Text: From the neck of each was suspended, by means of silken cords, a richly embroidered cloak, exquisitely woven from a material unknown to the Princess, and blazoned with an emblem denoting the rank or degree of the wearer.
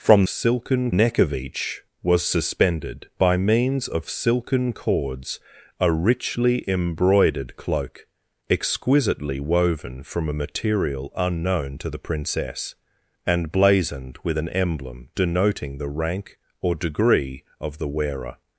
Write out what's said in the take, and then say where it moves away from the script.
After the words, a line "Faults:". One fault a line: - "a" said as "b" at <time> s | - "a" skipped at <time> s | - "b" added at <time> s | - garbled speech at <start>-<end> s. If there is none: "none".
From silken neck of each was suspended, by means of silken cords, a richly embroidered cloak, exquisitely woven from a material unknown to the Princess, and blazoned with an emblem denoting the rank or degree of the wearer.
Faults:
- "the" said as "silken" at 0.3 s